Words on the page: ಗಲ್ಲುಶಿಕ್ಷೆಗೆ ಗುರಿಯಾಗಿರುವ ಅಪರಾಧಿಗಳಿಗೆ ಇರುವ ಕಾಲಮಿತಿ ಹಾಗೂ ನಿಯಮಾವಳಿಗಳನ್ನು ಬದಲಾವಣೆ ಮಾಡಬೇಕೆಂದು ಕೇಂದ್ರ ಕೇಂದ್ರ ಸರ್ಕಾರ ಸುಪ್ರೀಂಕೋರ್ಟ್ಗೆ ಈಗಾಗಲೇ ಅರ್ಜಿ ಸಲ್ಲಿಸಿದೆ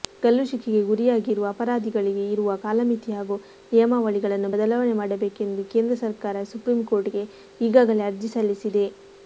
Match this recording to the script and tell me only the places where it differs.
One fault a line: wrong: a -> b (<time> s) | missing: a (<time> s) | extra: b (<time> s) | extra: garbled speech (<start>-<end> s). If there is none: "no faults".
missing: ಕೇಂದ್ರ (6.0 s)